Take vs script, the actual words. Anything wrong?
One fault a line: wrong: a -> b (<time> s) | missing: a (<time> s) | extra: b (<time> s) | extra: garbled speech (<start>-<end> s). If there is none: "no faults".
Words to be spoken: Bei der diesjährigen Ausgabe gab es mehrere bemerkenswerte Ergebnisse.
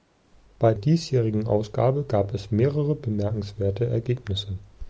missing: der (0.7 s)